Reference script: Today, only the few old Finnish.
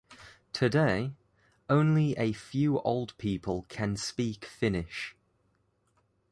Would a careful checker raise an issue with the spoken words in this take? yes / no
yes